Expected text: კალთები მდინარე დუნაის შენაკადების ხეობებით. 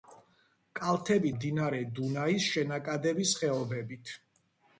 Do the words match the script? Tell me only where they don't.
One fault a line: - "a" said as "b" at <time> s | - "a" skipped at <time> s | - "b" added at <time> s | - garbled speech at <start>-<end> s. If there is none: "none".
none